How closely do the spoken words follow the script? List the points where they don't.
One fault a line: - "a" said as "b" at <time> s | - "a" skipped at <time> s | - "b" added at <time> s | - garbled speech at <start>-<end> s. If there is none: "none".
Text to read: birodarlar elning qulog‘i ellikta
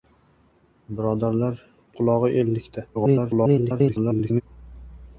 - "elning" skipped at 1.6 s
- garbled speech at 2.9-4.4 s